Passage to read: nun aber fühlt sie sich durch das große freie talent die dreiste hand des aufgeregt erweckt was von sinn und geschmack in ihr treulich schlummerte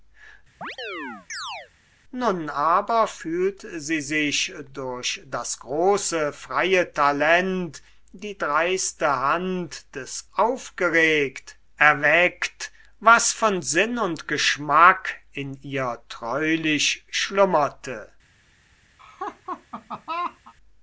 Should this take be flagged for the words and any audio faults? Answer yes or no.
yes